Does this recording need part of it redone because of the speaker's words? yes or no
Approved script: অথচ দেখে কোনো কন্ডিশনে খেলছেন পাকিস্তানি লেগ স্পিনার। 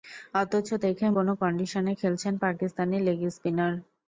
no